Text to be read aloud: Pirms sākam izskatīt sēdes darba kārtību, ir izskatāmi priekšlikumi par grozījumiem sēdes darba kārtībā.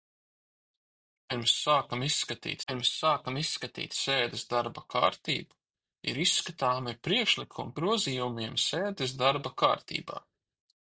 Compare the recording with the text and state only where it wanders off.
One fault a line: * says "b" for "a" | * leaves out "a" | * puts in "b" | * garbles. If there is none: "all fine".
* puts in "pirms sākam izskatīt"
* leaves out "par"